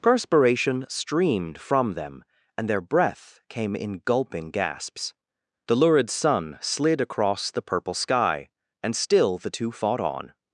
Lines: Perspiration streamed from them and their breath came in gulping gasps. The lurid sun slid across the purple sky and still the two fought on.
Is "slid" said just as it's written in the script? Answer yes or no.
yes